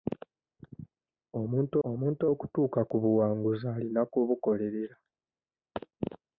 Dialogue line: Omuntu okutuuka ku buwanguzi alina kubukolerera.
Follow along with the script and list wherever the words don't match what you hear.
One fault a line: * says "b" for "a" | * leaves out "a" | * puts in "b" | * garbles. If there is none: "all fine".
* puts in "omuntu"